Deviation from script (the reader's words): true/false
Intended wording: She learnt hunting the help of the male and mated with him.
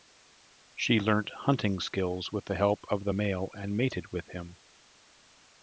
true